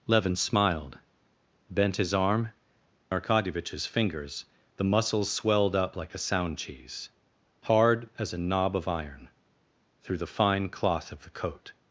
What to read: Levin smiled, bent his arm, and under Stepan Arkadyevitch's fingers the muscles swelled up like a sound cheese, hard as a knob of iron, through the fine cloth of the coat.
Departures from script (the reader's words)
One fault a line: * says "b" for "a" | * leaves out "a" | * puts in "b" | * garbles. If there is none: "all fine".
* leaves out "and under Stepan"